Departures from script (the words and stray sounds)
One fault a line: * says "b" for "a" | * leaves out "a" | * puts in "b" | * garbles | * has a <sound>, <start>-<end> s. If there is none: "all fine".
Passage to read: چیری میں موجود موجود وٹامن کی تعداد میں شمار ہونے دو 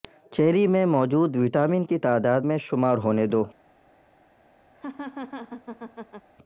* leaves out "موجود"
* has a laugh, 4.7-6.3 s